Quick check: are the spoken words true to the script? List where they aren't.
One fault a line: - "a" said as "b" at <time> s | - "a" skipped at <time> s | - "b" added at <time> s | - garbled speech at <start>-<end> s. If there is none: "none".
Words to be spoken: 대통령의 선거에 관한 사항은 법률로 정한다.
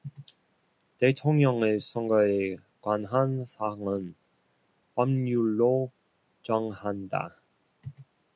none